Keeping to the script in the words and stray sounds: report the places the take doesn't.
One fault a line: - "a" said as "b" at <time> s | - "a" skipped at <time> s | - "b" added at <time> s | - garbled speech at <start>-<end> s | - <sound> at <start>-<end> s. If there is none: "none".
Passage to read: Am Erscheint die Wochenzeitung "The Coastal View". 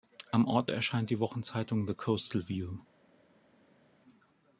- "Ort" added at 0.5 s